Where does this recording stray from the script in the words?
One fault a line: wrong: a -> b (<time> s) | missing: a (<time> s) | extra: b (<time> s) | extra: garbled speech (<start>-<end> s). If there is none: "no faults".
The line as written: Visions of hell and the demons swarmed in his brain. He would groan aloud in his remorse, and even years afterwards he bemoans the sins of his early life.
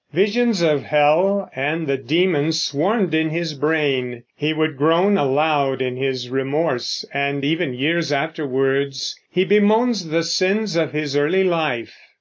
no faults